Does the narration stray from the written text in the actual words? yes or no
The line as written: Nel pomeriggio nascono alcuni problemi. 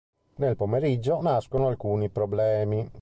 no